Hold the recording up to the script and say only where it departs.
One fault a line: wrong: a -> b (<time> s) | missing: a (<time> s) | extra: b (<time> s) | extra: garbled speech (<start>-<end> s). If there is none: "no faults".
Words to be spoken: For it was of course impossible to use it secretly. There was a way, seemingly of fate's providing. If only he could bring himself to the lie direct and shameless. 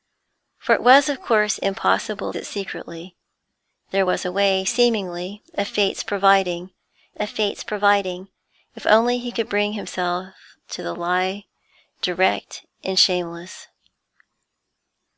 missing: to use (2.3 s)
extra: of fate's providing (7.2 s)